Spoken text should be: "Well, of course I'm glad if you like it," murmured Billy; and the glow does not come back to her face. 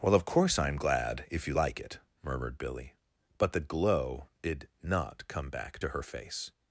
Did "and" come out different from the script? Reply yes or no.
yes